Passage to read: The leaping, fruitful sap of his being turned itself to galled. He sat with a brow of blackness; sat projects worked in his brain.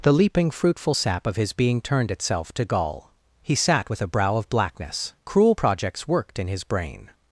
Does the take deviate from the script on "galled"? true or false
true